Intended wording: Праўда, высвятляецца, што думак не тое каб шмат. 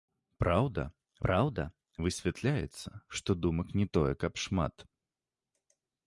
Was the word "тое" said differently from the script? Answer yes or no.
no